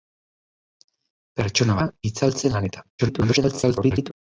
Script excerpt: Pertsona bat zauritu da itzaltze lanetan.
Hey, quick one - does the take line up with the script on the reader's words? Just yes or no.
no